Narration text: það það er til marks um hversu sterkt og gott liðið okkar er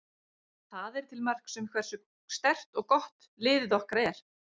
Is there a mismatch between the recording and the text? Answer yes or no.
yes